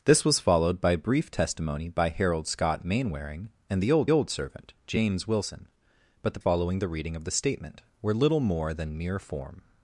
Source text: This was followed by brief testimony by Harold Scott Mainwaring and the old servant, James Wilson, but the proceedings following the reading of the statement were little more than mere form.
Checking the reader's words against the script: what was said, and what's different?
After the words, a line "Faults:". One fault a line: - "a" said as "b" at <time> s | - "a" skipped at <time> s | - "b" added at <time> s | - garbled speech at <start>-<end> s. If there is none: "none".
This was followed by brief testimony by Harold Scott Mainwaring and the old old servant, James Wilson, but the following the reading of the statement were little more than mere form.
Faults:
- "old" added at 4.1 s
- "proceedings" skipped at 6.4 s